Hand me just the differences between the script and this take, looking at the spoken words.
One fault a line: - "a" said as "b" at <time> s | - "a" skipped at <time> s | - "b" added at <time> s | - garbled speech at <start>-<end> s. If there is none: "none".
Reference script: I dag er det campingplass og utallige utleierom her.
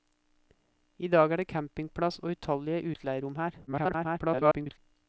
- garbled speech at 3.7-4.8 s